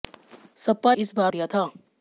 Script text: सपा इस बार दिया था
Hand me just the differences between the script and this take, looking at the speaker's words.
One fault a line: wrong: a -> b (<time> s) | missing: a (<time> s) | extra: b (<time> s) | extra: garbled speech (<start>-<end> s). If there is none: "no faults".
no faults